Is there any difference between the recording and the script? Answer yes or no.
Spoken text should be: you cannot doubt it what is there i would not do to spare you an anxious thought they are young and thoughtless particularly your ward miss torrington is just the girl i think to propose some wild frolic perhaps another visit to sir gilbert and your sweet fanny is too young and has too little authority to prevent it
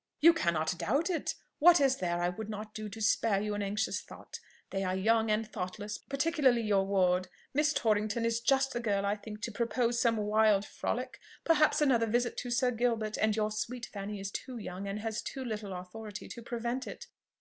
no